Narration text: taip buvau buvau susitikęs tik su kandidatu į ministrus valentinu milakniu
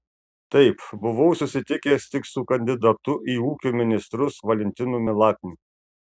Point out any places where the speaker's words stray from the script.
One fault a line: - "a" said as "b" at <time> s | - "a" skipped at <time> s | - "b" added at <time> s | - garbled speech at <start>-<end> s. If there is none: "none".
- "buvau" skipped at 1.4 s
- "ūkio" added at 3.5 s